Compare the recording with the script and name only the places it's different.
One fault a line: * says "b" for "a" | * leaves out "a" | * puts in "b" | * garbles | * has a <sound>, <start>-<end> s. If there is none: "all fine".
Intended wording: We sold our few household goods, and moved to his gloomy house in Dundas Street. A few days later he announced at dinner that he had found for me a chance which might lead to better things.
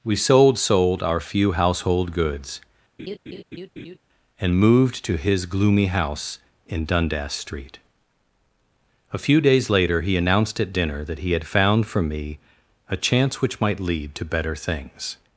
* puts in "sold"
* has a laugh, 3.0-4.0 s